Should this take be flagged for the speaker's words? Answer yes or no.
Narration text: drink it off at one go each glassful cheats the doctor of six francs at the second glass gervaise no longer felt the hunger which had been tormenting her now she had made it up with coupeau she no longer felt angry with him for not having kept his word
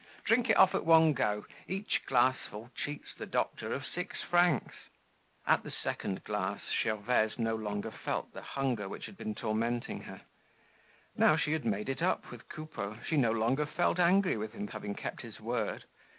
yes